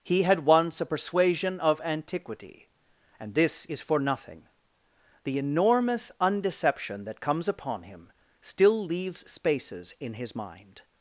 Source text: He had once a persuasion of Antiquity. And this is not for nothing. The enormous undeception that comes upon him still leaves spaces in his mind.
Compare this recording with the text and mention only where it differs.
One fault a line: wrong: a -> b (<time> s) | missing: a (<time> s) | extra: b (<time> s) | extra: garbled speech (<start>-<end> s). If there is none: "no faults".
missing: not (3.8 s)